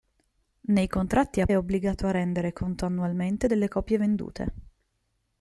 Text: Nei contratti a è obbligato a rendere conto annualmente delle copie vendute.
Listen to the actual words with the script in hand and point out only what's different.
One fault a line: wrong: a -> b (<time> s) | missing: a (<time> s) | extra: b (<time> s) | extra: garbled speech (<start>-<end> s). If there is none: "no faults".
no faults